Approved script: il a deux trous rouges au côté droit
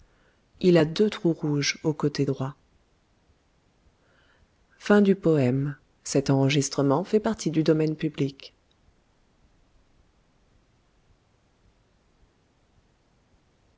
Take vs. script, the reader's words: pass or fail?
pass